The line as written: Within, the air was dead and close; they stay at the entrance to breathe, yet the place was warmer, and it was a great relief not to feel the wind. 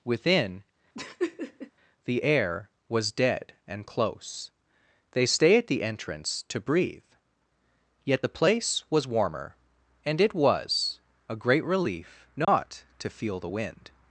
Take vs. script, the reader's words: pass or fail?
pass